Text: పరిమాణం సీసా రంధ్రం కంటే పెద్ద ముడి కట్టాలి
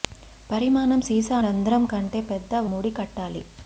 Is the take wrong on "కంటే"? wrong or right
right